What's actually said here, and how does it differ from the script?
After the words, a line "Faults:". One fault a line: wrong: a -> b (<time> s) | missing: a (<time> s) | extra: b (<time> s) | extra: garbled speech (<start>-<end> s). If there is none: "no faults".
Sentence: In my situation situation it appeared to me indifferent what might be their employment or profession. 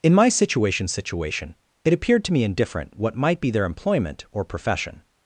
In my situation situation it appeared to me indifferent what might be their employment or profession.
Faults:
no faults